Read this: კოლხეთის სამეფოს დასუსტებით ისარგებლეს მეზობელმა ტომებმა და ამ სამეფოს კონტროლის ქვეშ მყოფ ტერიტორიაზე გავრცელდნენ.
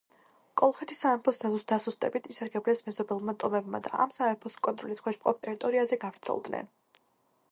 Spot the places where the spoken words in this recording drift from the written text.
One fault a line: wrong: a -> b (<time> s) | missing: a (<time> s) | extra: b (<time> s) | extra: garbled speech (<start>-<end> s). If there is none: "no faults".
no faults